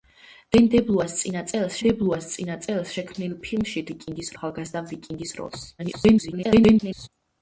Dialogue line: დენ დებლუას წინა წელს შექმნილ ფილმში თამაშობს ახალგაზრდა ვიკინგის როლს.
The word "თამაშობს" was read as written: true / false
false